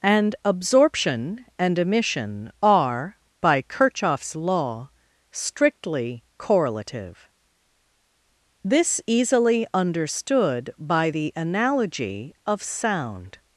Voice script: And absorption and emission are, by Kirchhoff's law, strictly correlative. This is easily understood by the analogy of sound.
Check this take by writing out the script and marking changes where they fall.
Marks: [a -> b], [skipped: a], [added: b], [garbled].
And absorption and emission are, by Kirchhoff's law, strictly correlative. This [skipped: is] easily understood by the analogy of sound.